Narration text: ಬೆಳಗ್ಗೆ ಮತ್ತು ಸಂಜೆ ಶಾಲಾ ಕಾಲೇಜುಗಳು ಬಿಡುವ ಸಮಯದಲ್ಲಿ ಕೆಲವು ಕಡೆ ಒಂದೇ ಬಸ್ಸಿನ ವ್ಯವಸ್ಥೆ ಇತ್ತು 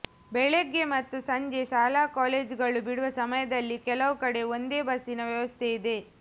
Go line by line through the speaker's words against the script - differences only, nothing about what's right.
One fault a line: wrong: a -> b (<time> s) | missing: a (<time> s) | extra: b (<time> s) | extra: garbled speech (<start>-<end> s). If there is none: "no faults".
wrong: ಇತ್ತು -> ಇದೆ (5.7 s)